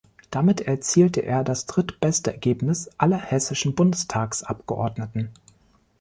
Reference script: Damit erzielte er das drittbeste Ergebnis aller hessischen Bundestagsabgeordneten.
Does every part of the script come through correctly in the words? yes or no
yes